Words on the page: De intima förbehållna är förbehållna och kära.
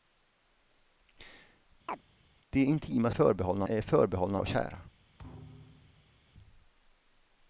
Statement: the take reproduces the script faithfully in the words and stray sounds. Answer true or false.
false